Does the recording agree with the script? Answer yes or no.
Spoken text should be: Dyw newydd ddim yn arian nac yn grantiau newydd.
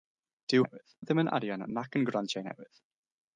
yes